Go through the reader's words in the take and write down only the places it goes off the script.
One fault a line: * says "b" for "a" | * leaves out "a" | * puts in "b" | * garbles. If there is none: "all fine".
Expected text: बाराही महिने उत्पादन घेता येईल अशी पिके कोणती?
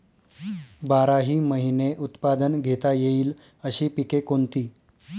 all fine